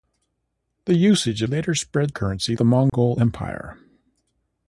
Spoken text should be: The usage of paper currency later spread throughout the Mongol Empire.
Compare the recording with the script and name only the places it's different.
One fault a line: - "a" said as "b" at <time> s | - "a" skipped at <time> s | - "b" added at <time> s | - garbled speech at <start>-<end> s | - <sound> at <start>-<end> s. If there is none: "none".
- "of paper currency" skipped at 1.4 s
- "throughout" said as "currency" at 2.1 s
- dropout at 2.9-2.9 s